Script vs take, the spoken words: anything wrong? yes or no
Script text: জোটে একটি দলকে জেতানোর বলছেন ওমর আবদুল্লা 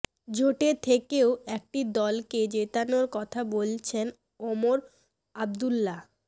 yes